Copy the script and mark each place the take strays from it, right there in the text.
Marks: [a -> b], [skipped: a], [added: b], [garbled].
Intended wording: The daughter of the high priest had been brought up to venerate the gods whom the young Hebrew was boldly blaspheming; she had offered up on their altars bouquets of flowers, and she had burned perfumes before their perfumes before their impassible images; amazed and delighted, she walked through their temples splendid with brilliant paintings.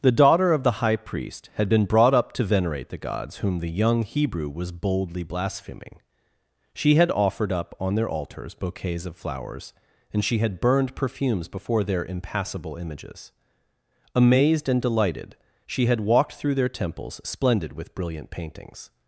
The daughter of the high priest had been brought up to venerate the gods whom the young Hebrew was boldly blaspheming; she had offered up on their altars bouquets of flowers, and she had burned perfumes before their [skipped: perfumes before their] impassible images; amazed and delighted, she [added: had] walked through their temples splendid with brilliant paintings.